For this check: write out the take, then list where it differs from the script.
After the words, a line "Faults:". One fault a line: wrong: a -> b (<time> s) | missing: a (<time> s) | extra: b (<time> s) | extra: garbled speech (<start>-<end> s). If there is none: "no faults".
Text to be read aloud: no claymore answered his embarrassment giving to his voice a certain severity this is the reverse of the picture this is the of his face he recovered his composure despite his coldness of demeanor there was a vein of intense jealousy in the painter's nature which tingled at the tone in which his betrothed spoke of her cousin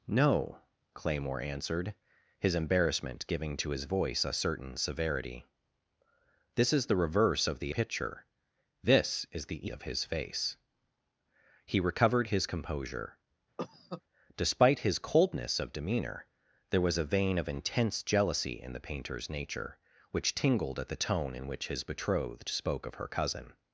no claymore answered his embarrassment giving to his voice a certain severity this is the reverse of the picture this is the of his face he recovered his composure despite his coldness of demeanor there was a vein of intense jealousy in the painter's nature which tingled at the tone in which his betrothed spoke of her cousin
Faults:
no faults